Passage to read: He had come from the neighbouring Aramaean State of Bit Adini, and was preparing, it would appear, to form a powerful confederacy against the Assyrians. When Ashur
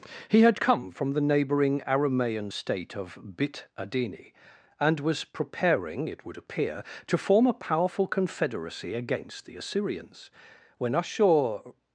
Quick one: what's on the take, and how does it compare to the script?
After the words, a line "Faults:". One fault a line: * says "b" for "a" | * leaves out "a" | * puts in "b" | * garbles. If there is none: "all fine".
He had come from the neighbouring Aramaean State of Bit Adini, and was preparing, it would appear, to form a powerful confederacy against the Assyrians. When Ashur
Faults:
all fine